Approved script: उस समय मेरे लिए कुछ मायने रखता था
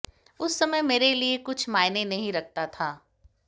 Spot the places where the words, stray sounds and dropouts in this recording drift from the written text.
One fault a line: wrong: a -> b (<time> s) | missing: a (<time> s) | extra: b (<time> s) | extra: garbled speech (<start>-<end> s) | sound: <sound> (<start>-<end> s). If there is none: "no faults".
extra: नहीं (2.0 s)